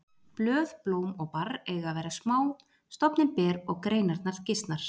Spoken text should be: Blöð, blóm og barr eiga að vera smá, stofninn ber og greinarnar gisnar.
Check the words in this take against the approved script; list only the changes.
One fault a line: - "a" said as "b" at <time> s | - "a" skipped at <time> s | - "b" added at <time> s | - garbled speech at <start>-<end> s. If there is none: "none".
none